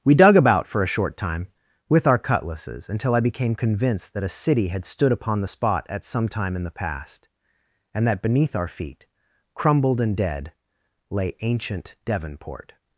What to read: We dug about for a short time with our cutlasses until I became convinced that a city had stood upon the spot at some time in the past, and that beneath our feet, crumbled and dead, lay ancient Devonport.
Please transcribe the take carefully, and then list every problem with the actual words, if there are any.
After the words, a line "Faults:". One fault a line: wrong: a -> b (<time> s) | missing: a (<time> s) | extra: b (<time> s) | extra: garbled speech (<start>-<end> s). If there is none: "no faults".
We dug about for a short time with our cutlasses until I became convinced that a city had stood upon the spot at some time in the past, and that beneath our feet, crumbled and dead, lay ancient Devonport.
Faults:
no faults